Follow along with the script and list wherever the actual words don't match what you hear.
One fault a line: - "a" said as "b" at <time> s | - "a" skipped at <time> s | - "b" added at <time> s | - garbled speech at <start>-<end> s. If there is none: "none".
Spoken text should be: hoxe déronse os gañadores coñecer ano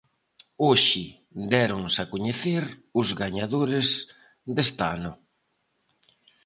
- "a coñecer" added at 2.0 s
- "coñecer" said as "deste" at 4.5 s